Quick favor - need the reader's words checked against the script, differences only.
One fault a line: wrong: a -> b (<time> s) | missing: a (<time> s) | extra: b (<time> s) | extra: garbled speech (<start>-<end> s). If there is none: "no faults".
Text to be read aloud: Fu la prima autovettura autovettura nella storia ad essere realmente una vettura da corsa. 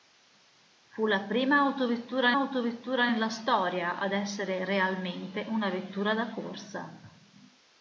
no faults